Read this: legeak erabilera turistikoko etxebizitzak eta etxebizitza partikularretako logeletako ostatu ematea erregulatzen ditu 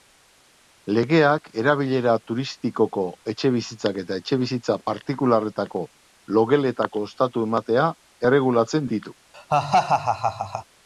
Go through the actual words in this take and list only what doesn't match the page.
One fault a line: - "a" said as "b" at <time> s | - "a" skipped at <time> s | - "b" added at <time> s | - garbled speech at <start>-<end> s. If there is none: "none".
none